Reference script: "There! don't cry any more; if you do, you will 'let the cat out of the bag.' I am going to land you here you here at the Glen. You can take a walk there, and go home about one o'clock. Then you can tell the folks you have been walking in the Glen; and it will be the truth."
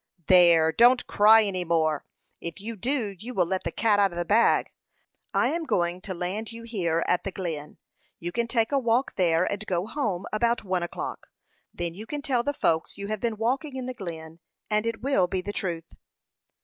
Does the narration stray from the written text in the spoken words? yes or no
yes